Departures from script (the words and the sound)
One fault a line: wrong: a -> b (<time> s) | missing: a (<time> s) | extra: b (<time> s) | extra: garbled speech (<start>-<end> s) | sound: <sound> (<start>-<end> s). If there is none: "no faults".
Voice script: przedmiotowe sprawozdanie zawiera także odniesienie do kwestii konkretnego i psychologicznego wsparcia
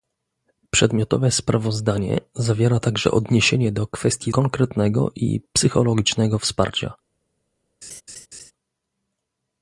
sound: laugh (7.8-8.5 s)